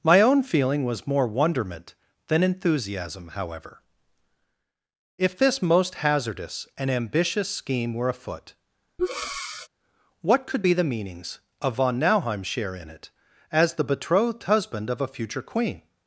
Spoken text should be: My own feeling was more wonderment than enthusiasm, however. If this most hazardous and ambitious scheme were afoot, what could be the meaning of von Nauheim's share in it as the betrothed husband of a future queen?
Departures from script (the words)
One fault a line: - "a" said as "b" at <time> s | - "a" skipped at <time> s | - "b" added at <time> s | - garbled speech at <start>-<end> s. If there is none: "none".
- "meaning" said as "meanings" at 10.8 s